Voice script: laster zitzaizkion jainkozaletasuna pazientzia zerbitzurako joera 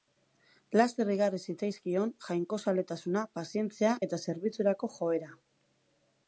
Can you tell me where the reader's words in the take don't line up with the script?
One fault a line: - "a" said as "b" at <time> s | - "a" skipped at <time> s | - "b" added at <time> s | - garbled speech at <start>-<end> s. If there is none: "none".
- "igarri" added at 1.1 s
- "eta" added at 4.1 s